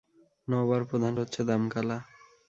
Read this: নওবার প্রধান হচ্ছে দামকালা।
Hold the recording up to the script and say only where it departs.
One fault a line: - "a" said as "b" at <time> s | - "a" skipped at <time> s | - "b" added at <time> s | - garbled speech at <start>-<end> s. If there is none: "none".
none